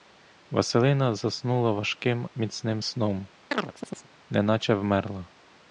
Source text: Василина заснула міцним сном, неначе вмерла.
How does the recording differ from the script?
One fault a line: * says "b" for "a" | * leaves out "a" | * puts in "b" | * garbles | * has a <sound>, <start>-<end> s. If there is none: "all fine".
* puts in "важким"
* has a chirp, 3.5-4.1 s